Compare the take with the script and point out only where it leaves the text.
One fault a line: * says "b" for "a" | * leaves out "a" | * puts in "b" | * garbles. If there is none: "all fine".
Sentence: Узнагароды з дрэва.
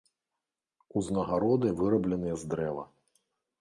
* puts in "вырабленыя"